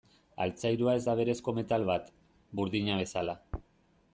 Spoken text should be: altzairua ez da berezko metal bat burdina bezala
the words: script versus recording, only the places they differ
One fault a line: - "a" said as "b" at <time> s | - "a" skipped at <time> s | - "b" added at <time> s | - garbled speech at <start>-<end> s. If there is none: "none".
none